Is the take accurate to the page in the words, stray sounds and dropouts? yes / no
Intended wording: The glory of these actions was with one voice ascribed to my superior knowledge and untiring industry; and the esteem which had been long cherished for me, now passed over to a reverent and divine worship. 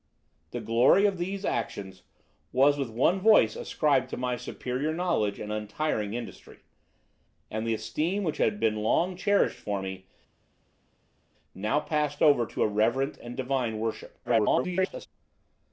no